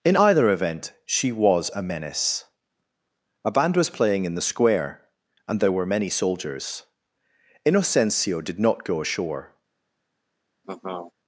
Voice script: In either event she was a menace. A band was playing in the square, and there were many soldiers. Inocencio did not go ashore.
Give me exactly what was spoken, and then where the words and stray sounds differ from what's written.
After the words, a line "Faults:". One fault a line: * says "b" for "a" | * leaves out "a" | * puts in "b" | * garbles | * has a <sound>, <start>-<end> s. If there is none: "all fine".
In either event she was a menace. A band was playing in the square, and there were many soldiers. Inocencio did not go ashore.
Faults:
* has a laugh, 10.6-11.1 s